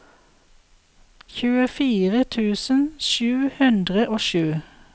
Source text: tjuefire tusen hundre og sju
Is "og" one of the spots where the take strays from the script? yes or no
no